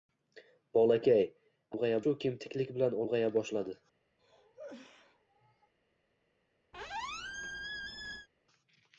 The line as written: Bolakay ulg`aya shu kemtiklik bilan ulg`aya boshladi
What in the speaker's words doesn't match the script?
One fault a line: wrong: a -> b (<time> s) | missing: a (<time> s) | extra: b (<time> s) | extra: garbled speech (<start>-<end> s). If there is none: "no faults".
no faults